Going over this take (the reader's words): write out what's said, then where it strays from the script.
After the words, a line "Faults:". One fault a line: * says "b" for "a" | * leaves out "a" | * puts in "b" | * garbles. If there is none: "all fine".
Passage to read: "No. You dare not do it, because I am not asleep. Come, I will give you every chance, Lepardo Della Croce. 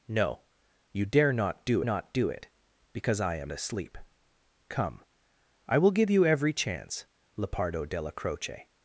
"No. You dare not do not do it, because I am asleep. Come, I will give you every chance, Lepardo Della Croce.
Faults:
* puts in "not do"
* leaves out "not"